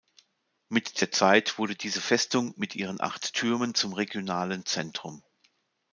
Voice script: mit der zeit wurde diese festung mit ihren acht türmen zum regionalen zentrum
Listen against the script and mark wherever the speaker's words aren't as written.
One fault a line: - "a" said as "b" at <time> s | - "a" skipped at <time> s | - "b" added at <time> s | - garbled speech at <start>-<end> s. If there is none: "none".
none